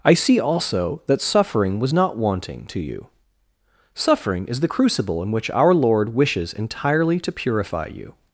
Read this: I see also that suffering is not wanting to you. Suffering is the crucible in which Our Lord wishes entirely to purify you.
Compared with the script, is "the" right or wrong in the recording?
right